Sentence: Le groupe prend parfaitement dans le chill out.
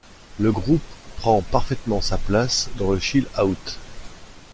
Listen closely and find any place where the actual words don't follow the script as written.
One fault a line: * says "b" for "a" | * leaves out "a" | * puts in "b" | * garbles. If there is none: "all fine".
* puts in "sa place"